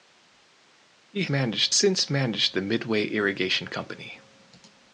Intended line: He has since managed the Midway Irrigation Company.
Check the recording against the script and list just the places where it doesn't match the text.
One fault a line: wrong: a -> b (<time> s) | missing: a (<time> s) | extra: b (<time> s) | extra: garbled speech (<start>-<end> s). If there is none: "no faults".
wrong: has -> managed (1.3 s)